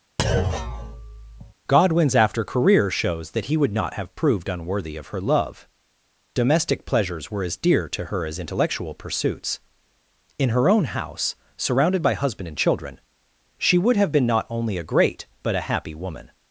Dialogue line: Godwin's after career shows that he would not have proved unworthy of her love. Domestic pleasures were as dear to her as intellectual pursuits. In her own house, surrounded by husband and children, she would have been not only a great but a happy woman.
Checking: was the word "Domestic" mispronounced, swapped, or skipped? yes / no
no